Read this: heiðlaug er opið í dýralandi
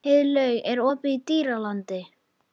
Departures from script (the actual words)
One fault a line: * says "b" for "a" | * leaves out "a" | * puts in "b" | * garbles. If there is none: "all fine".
all fine